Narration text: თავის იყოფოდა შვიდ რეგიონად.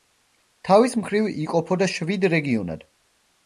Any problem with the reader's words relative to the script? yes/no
yes